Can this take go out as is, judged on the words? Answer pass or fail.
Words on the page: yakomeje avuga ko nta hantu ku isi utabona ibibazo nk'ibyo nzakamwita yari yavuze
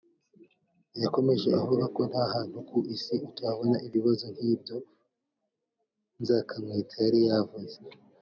pass